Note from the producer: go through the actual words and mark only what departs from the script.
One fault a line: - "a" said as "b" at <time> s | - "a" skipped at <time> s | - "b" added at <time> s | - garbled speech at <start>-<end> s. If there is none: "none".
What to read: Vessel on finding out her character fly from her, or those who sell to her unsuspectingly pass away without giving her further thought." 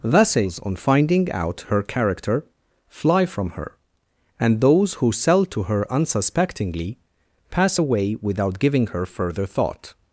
- "Vessel" said as "Vessels" at 0.0 s
- "or" said as "and" at 4.4 s